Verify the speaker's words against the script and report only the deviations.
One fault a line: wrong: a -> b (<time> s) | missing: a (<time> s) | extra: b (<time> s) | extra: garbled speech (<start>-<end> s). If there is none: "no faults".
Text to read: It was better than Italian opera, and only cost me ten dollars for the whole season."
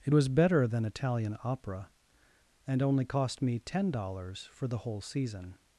no faults